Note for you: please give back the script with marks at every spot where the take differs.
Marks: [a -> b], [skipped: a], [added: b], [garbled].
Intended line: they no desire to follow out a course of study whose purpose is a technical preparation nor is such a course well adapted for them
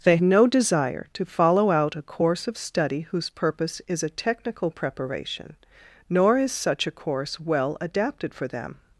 they no desire to follow out a course of study whose purpose is a technical preparation nor is such a course well adapted for them